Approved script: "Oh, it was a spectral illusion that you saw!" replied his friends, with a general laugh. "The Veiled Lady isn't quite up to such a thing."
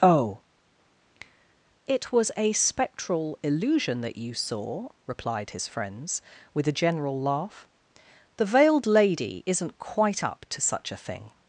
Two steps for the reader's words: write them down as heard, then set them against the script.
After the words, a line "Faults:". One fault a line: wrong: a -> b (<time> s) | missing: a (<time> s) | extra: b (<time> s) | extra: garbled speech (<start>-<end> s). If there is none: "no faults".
"Oh, it was a spectral illusion that you saw!" replied his friends, with a general laugh. "The Veiled Lady isn't quite up to such a thing."
Faults:
no faults